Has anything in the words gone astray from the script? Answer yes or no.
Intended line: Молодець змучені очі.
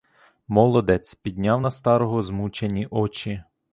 yes